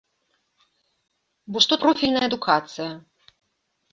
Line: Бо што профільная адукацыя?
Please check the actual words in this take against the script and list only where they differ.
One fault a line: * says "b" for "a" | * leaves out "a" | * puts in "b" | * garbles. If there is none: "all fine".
all fine